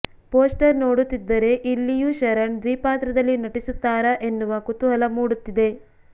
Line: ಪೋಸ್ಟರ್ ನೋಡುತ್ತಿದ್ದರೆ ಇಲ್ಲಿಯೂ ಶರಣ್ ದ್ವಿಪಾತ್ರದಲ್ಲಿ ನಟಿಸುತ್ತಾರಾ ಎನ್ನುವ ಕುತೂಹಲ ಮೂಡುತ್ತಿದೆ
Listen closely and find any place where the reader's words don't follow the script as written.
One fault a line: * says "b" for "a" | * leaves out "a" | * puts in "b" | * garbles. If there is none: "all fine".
all fine